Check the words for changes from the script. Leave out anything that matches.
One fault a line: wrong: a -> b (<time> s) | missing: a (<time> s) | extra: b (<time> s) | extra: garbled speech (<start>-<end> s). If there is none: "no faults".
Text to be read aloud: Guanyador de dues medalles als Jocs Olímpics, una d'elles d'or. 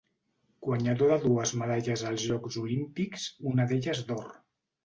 no faults